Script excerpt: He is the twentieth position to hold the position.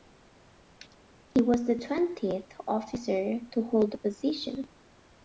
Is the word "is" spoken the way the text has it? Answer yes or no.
no